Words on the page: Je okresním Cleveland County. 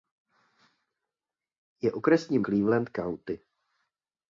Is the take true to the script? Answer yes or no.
yes